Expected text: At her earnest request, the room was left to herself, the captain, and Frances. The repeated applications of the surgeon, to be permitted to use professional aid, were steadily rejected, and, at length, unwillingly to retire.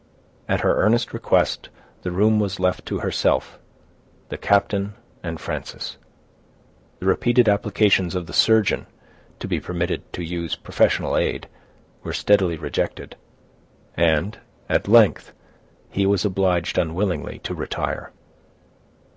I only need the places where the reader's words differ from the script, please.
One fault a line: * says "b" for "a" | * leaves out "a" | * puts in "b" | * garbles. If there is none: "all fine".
* puts in "he was obliged"